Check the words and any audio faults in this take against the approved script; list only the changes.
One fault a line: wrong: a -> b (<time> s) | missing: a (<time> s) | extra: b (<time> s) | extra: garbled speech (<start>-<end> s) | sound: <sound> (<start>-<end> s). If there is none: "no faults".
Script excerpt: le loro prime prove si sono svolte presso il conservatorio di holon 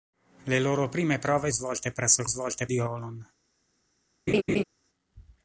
missing: si sono (1.5 s)
wrong: conservatorio -> svolte (2.3 s)
sound: laugh (4.3-4.6 s)